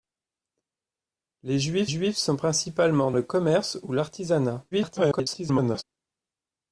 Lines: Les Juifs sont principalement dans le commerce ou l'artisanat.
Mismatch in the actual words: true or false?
true